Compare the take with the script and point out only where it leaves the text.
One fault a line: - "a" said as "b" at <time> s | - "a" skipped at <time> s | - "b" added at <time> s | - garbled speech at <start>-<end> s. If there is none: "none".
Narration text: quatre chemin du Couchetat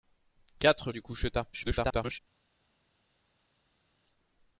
- "chemin" skipped at 0.9 s
- garbled speech at 1.5-2.2 s